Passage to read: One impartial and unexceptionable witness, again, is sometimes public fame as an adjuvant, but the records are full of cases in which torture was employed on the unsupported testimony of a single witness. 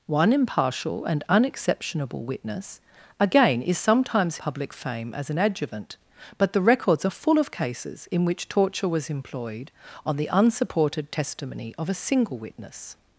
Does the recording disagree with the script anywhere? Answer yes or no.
no